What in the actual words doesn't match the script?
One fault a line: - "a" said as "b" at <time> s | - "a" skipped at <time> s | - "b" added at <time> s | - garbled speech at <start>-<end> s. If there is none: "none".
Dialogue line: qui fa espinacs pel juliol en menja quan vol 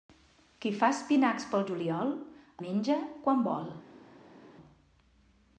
- "en" skipped at 2.1 s